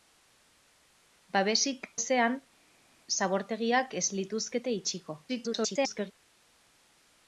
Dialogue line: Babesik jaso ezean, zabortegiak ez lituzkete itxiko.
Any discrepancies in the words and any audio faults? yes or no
yes